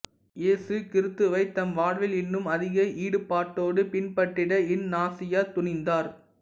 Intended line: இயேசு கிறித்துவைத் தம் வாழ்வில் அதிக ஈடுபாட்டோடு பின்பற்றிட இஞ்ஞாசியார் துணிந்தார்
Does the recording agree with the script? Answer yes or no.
no